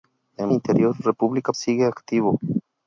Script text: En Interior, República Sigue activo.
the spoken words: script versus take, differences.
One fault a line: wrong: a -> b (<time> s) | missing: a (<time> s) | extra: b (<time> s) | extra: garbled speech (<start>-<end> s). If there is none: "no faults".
no faults